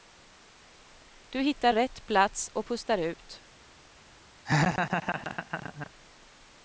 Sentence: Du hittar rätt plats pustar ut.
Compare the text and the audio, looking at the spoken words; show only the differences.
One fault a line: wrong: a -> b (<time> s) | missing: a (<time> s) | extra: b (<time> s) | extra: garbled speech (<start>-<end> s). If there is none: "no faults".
extra: och (2.5 s)